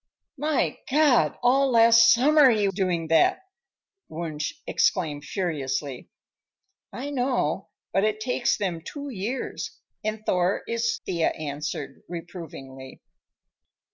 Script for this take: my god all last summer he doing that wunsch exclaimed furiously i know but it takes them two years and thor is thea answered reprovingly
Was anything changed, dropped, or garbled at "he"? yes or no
no